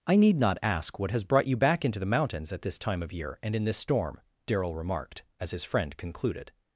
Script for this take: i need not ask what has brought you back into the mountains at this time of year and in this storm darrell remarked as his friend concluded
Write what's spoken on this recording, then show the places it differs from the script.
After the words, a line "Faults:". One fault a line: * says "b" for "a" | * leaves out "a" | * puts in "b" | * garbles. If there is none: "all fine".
i need not ask what has brought you back into the mountains at this time of year and in this storm darrell remarked as his friend concluded
Faults:
all fine